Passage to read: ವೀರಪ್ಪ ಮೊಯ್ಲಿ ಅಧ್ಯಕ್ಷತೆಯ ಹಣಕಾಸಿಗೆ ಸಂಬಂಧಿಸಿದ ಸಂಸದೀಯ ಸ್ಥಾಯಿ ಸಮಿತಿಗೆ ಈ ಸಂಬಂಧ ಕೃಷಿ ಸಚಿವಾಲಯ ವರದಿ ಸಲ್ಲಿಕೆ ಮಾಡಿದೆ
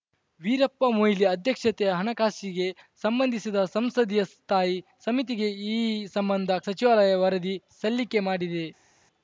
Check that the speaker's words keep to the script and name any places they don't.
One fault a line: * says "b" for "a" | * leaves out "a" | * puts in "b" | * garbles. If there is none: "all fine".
* leaves out "ಕೃಷಿ"